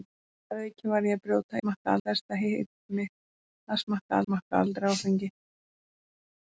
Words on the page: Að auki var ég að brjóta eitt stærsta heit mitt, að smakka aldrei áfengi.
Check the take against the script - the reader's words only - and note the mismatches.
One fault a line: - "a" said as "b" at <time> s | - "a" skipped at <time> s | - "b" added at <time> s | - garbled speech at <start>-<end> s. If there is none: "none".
- "eitt" said as "smakka" at 1.6 s
- "smakka" added at 4.3 s